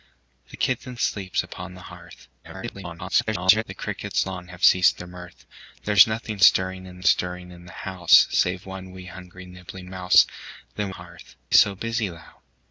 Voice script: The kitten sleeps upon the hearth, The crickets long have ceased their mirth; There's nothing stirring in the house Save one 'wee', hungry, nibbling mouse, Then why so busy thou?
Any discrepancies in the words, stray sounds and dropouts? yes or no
yes